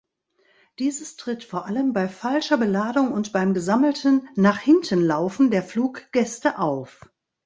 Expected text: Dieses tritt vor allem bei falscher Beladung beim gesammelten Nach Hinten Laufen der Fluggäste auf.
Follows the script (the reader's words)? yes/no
no